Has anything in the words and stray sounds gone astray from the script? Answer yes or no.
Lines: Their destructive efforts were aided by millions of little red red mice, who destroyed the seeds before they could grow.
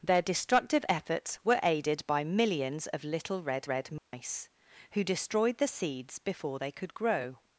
yes